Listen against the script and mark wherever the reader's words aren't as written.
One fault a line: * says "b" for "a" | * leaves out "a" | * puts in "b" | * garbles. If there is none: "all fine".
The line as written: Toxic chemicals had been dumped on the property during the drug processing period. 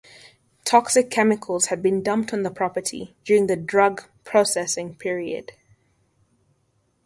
all fine